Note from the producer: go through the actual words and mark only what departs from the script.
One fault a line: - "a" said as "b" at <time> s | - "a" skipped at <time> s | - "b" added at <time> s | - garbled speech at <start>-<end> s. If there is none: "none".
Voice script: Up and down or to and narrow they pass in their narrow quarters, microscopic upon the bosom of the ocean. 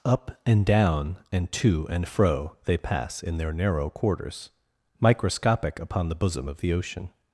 - "or" said as "and" at 1.3 s
- "narrow" said as "fro" at 2.1 s